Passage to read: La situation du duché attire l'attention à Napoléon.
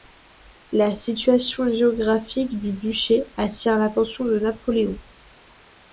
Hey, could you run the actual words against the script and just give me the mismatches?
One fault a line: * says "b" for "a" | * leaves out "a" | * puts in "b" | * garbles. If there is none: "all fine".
* puts in "géographique"
* says "de" for "à"